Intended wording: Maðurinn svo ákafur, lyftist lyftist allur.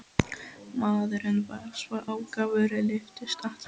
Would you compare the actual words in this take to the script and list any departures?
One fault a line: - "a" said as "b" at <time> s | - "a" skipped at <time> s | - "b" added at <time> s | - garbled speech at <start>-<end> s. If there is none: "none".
- "var" added at 1.5 s
- "lyftist" skipped at 3.4 s